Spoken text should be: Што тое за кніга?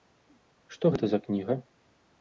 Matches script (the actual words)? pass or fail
fail